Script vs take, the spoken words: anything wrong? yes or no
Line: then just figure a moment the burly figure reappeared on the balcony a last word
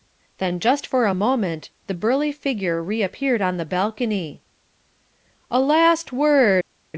yes